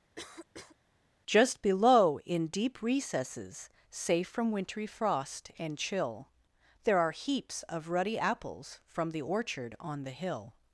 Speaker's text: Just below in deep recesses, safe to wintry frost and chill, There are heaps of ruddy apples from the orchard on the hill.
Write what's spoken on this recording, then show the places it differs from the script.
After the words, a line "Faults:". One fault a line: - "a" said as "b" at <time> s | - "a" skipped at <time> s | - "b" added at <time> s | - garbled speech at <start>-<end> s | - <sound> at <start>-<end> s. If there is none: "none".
Just below in deep recesses, safe from wintry frost and chill, There are heaps of ruddy apples from the orchard on the hill.
Faults:
- cough at 0.2-0.8 s
- "to" said as "from" at 4.3 s